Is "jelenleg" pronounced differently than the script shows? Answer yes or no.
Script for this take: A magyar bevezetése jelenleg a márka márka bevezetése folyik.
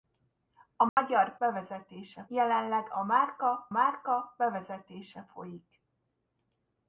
no